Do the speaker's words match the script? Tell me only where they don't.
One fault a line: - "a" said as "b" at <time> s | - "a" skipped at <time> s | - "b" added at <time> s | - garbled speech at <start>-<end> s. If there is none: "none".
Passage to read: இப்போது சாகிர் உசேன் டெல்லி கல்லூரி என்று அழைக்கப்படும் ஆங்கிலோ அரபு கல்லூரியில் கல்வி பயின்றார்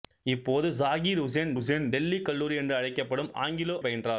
- "உசேன்" added at 1.5 s
- "அரபு கல்லூரியில் கல்வி" skipped at 3.8 s